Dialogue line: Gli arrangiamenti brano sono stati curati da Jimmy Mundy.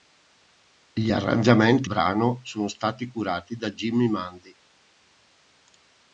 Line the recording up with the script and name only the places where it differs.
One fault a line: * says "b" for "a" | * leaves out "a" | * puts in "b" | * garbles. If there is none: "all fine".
all fine